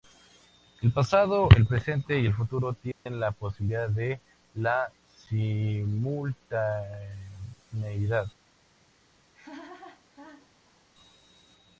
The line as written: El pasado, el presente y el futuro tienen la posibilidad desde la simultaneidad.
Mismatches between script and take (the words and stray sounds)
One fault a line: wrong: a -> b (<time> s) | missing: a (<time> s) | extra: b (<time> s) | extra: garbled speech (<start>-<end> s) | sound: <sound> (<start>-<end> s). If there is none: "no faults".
sound: dropout (2.9-3.1 s)
wrong: desde -> de (3.9 s)
sound: laugh (9.3-10.9 s)